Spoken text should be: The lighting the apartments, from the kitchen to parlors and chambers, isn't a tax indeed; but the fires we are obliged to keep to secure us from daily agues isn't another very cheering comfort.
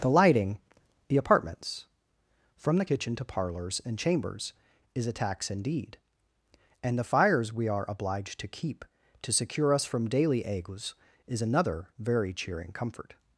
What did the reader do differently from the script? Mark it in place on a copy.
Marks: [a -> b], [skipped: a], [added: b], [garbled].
The lighting the apartments, from the kitchen to parlors and chambers, [isn't -> is] a tax indeed; [but -> and] the fires we are obliged to keep to secure us from daily agues [isn't -> is] another very cheering comfort.